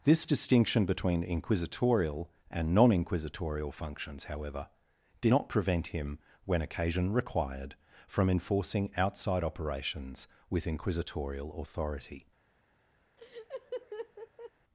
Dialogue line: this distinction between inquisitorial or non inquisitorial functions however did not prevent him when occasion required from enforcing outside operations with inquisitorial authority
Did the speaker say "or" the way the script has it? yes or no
no